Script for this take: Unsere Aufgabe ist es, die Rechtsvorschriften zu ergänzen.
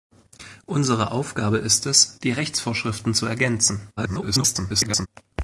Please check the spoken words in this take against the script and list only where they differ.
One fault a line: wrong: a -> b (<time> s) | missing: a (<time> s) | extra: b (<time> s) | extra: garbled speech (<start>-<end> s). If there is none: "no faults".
extra: garbled speech (4.0-5.1 s)